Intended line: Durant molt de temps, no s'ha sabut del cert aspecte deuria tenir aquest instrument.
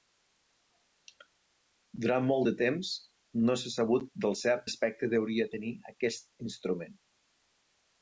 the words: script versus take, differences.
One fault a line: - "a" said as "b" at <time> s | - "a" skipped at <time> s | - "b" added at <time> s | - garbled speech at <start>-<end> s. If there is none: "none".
none